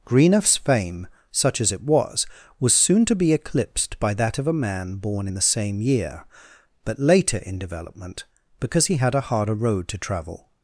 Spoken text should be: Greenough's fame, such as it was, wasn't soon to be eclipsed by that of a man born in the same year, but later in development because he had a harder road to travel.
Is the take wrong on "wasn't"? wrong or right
wrong